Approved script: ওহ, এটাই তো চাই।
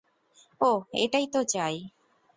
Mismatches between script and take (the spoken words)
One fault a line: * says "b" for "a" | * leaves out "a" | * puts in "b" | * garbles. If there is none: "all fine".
all fine